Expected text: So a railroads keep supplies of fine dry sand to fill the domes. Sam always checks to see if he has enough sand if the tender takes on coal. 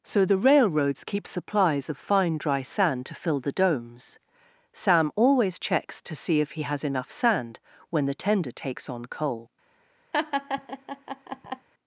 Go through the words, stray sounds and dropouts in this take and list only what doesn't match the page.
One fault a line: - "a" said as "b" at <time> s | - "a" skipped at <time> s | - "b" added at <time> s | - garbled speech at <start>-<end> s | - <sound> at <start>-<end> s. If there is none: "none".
- "a" said as "the" at 0.2 s
- "if" said as "when" at 7.9 s
- laugh at 10.1-11.7 s